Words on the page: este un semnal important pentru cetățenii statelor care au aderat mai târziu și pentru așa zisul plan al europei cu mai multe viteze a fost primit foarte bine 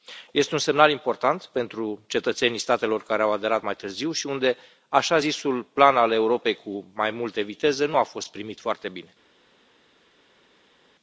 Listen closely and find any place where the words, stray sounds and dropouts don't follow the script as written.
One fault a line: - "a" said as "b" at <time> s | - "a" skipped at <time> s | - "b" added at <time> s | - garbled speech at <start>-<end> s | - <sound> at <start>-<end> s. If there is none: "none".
- "pentru" said as "unde" at 4.3 s
- "nu" added at 7.8 s